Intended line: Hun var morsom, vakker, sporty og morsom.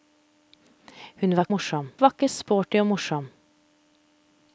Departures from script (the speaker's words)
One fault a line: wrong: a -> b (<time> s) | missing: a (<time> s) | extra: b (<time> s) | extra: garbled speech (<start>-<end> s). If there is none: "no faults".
no faults